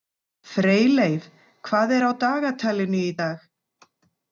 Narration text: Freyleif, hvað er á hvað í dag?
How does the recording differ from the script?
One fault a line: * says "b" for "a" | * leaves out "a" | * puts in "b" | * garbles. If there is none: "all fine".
* says "dagatalinu" for "hvað"